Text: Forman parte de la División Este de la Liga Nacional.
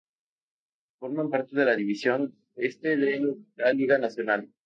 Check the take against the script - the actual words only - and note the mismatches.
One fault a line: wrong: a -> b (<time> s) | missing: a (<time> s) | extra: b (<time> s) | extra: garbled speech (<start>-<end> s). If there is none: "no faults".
no faults